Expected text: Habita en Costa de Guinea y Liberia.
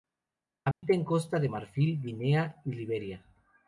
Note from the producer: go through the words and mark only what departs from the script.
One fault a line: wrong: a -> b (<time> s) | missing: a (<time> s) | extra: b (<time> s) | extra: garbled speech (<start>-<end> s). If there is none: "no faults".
extra: Marfil (1.4 s)